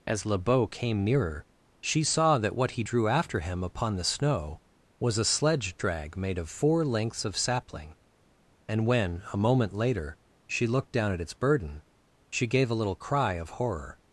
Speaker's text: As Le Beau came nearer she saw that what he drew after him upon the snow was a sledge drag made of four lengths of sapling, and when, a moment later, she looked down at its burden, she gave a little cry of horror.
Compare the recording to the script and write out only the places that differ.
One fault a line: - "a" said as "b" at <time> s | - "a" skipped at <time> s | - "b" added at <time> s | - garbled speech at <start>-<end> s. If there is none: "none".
none